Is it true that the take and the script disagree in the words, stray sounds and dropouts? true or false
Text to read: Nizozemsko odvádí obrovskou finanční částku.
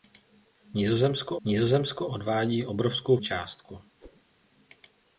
true